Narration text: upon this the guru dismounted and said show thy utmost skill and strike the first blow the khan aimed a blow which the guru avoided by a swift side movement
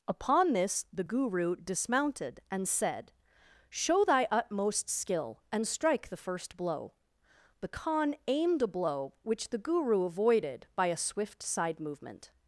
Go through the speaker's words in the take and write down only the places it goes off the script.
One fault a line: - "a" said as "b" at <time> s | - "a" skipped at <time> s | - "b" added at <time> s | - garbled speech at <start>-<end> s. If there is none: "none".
none